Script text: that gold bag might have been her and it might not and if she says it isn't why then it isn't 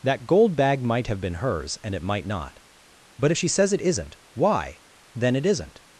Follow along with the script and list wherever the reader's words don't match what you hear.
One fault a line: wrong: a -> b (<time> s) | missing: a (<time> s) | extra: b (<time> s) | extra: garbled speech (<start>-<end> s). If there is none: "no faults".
wrong: her -> hers (1.4 s)
wrong: and -> but (3.2 s)